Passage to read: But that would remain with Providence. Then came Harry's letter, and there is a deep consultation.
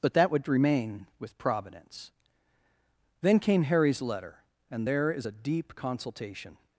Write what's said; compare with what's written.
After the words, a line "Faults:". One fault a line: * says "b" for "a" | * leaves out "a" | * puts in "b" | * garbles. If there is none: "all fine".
But that would remain with Providence. Then came Harry's letter, and there is a deep consultation.
Faults:
all fine